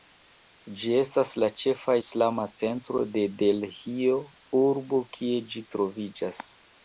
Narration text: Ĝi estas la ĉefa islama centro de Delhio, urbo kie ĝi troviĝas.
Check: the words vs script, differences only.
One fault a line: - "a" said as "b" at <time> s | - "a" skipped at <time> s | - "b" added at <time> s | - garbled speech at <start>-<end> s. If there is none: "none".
none